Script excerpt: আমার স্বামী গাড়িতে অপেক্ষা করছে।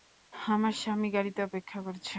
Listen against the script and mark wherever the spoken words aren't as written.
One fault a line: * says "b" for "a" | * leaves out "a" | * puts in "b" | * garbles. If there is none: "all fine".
all fine